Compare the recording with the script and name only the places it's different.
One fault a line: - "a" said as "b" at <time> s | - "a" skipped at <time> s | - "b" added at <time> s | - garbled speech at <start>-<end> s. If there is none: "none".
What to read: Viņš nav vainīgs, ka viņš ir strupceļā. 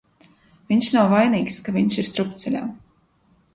none